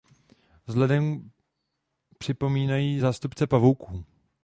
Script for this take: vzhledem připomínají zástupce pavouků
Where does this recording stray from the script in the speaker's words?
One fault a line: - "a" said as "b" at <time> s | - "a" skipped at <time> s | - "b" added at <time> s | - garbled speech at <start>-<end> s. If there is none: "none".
none